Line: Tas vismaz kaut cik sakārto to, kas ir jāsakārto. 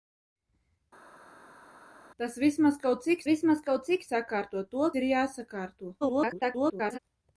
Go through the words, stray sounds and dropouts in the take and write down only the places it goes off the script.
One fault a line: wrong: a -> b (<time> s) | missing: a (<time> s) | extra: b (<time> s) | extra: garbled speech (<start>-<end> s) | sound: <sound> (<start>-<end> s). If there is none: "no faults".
extra: vismaz kaut cik (3.3 s)
missing: kas (4.9 s)
extra: garbled speech (6.0-7.0 s)